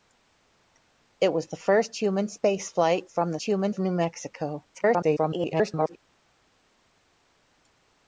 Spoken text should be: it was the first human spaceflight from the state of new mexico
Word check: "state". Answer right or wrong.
wrong